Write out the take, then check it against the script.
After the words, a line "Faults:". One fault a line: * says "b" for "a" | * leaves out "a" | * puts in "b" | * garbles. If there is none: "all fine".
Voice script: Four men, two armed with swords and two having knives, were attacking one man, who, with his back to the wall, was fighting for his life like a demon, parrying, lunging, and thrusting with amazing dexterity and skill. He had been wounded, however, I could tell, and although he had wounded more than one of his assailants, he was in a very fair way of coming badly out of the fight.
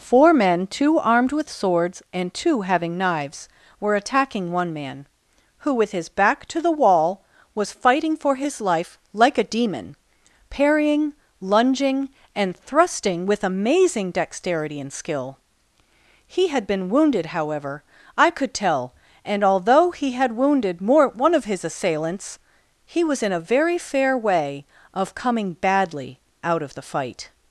Four men, two armed with swords and two having knives, were attacking one man, who, with his back to the wall, was fighting for his life like a demon, parrying, lunging, and thrusting with amazing dexterity and skill. He had been wounded, however, I could tell, and although he had wounded more one of his assailants, he was in a very fair way of coming badly out of the fight.
Faults:
* leaves out "than"